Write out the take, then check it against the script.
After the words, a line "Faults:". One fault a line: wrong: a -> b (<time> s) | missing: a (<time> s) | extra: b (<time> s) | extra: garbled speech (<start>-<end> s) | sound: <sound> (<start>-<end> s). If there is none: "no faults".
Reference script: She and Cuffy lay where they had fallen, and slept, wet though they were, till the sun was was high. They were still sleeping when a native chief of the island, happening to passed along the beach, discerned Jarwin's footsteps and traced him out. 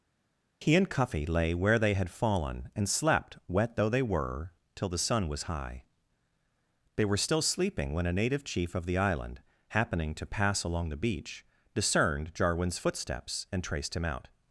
He and Cuffy lay where they had fallen, and slept, wet though they were, till the sun was high. They were still sleeping when a native chief of the island, happening to pass along the beach, discerned Jarwin's footsteps and traced him out.
Faults:
wrong: She -> He (0.6 s)
missing: was (5.4 s)
wrong: passed -> pass (10.2 s)